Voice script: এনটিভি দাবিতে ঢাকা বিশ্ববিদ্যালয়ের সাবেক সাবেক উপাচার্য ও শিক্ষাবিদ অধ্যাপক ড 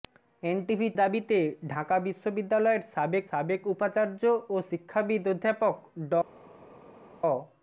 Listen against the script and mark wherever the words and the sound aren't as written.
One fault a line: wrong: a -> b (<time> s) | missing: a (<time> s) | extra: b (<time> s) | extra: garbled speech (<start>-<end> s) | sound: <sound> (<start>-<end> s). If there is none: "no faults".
no faults